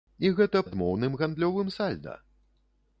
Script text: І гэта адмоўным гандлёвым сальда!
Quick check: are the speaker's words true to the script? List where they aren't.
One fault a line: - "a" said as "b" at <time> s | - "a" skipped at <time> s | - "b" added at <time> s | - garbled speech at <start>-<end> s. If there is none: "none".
none